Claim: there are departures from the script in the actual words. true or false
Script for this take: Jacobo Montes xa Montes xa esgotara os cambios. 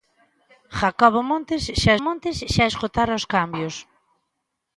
false